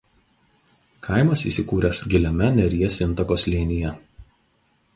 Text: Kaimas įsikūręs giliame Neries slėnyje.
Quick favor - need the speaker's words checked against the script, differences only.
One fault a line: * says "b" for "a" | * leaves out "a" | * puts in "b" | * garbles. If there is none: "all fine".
* puts in "intako"